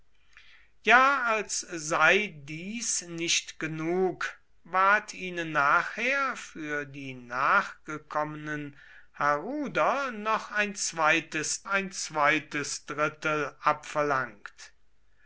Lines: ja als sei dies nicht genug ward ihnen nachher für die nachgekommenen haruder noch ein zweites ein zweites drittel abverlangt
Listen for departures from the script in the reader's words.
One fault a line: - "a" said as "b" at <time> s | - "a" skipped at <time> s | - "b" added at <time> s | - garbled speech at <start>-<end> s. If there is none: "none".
none